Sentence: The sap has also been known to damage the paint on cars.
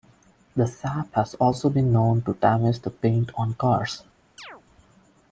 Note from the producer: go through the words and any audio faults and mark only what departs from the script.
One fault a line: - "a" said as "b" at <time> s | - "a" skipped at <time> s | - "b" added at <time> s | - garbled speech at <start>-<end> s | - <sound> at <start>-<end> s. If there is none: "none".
- chirp at 4.4-4.6 s